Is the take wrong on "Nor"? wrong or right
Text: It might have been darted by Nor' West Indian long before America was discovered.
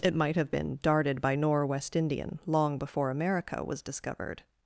right